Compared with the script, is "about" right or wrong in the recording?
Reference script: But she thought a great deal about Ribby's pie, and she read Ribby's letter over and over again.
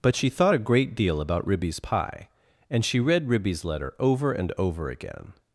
right